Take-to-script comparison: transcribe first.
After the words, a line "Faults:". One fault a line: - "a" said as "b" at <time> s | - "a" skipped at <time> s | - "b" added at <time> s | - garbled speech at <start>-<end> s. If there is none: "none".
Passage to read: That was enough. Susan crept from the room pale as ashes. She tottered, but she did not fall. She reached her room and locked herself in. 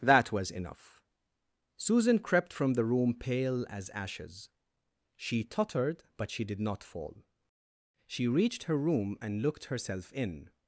That was enough. Susan crept from the room pale as ashes. She tottered, but she did not fall. She reached her room and looked herself in.
Faults:
- "locked" said as "looked" at 9.4 s